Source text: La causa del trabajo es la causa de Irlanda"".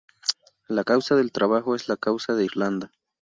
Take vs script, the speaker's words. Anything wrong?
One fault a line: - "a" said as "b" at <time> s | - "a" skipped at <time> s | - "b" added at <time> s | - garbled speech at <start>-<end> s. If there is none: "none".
none